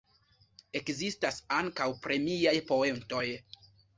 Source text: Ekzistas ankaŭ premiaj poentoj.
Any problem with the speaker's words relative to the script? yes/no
no